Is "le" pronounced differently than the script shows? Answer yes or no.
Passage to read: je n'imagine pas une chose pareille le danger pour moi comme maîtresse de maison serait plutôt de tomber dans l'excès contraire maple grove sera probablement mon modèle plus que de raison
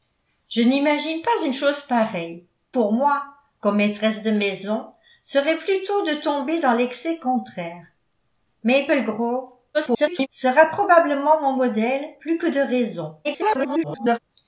yes